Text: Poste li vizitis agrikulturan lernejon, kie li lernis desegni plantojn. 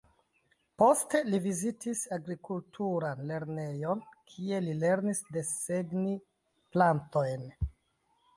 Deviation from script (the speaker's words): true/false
false